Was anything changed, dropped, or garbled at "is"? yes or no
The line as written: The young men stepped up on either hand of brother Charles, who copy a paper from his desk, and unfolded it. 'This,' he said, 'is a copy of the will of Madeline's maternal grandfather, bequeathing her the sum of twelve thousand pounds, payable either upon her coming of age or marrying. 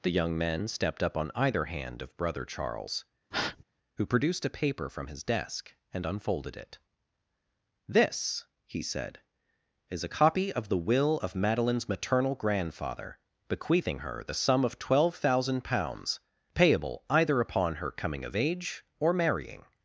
no